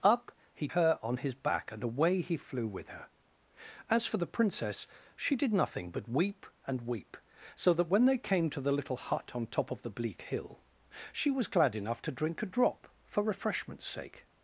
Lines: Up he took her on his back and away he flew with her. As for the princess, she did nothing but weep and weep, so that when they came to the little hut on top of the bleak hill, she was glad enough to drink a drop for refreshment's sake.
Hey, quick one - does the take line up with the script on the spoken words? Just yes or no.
no